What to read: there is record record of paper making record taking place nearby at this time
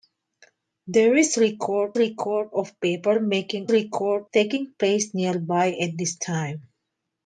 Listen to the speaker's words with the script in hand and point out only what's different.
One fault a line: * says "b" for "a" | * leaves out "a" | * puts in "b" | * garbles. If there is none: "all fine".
all fine